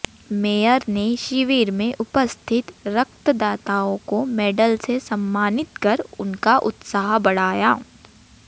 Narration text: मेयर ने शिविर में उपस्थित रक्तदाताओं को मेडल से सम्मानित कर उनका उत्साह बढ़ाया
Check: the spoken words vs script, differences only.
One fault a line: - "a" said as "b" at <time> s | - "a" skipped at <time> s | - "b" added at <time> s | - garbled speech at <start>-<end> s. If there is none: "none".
none